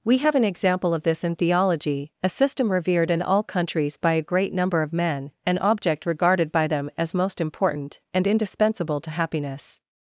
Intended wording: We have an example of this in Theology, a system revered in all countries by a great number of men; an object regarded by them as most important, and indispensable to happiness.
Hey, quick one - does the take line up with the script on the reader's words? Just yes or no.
yes